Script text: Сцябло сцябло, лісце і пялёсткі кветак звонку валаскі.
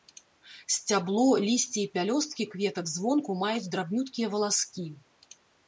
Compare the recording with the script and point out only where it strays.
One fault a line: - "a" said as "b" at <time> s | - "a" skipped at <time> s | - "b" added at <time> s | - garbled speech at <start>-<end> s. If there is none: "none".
- "сцябло" skipped at 1.2 s
- "маюць драбнюткія" added at 3.5 s